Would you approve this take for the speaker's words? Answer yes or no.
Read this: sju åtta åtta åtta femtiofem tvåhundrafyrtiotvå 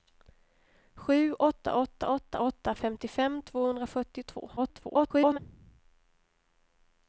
no